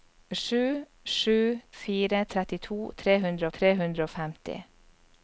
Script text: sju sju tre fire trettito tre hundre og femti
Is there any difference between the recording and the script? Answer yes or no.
yes